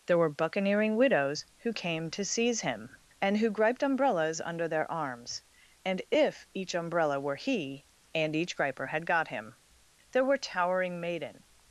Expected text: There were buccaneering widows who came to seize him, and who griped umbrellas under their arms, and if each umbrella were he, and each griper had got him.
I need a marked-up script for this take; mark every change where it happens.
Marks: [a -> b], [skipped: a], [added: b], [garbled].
There were buccaneering widows who came to seize him, and who griped umbrellas under their arms, and if each umbrella were he, and each griper had got him. [added: There were towering maiden]